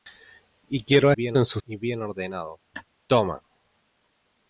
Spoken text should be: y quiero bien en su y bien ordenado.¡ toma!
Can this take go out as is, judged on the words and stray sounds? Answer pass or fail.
fail